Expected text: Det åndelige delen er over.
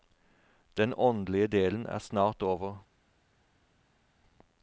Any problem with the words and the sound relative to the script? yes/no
yes